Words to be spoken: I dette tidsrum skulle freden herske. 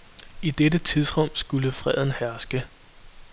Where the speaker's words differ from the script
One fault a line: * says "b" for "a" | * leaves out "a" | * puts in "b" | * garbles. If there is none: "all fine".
all fine